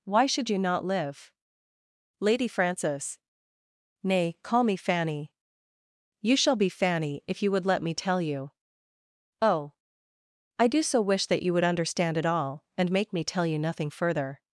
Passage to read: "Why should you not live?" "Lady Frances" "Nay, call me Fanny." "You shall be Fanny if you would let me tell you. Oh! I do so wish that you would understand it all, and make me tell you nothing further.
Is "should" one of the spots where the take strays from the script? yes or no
no